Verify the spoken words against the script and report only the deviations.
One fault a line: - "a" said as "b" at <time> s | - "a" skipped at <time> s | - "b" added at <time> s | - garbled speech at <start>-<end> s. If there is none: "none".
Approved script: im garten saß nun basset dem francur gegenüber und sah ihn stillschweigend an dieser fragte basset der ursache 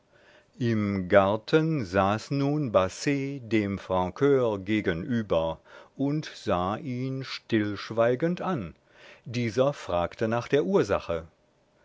- "basset" said as "nach" at 10.3 s